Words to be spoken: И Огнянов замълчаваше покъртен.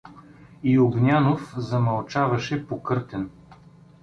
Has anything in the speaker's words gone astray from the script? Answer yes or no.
no